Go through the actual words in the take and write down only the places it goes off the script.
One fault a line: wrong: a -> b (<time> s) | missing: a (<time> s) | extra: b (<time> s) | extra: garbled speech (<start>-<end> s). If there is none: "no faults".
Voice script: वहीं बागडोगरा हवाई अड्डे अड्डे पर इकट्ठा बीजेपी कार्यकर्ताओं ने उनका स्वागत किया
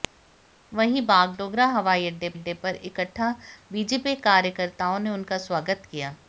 no faults